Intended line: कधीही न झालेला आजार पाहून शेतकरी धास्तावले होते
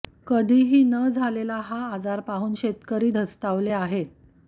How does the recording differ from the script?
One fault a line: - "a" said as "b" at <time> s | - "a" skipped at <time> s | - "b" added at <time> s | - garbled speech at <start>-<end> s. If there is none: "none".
- "हा" added at 1.6 s
- "होते" said as "आहेत" at 3.7 s